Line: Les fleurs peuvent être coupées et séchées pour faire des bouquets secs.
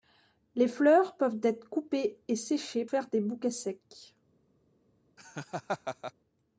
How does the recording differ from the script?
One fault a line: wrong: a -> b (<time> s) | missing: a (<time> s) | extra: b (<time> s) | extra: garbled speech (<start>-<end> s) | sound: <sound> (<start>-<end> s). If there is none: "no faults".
missing: pour (2.9 s)
sound: laugh (5.2-6.1 s)